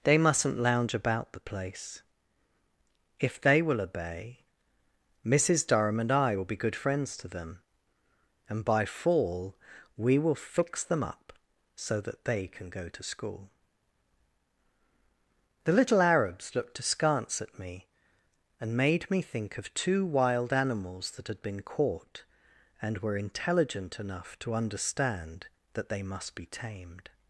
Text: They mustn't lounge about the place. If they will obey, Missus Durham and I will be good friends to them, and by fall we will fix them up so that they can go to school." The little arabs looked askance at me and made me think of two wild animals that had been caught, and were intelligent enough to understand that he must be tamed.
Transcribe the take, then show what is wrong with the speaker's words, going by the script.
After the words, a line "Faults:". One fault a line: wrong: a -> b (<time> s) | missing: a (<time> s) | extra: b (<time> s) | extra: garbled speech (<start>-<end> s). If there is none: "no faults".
They mustn't lounge about the place. If they will obey, Missus Durham and I will be good friends to them, and by fall we will fix them up so that they can go to school." The little arabs looked askance at me and made me think of two wild animals that had been caught, and were intelligent enough to understand that they must be tamed.
Faults:
wrong: he -> they (25.9 s)